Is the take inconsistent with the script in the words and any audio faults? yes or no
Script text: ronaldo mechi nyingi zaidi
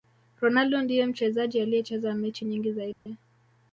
yes